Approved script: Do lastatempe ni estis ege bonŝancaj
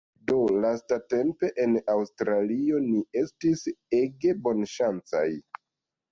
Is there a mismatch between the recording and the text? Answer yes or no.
yes